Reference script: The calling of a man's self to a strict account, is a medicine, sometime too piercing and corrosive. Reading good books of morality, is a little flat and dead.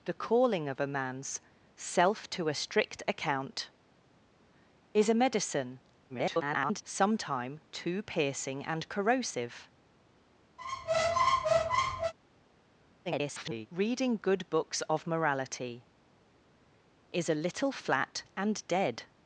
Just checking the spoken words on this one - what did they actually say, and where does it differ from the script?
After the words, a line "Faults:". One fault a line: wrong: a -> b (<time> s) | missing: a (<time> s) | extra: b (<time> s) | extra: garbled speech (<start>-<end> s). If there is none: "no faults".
The calling of a man's self to a strict account, is a medicine, [garbled] sometime too piercing and corrosive. [garbled] Reading good books of morality, is a little flat and dead.
Faults:
extra: garbled speech (6.1-6.8 s)
extra: garbled speech (13.1-13.7 s)